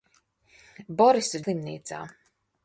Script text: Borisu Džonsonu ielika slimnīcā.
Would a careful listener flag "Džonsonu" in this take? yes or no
yes